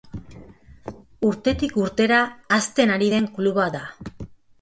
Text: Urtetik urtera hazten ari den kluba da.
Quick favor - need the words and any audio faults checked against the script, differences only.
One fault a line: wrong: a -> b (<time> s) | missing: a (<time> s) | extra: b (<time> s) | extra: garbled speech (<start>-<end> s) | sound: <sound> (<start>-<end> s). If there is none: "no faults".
no faults